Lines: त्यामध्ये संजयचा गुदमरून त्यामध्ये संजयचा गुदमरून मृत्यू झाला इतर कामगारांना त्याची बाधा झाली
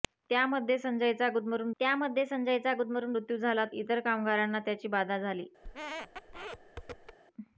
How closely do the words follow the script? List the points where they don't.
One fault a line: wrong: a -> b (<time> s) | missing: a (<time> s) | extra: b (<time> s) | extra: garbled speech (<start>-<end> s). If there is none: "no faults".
no faults